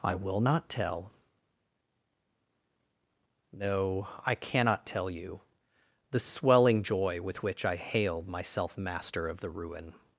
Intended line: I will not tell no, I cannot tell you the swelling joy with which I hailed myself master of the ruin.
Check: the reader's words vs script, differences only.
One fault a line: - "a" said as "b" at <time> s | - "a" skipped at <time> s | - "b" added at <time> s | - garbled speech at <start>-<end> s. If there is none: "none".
none